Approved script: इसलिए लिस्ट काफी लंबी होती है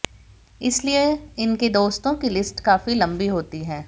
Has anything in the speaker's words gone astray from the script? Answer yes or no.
yes